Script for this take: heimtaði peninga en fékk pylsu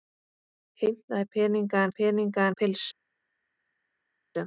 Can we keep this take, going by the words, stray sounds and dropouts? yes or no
no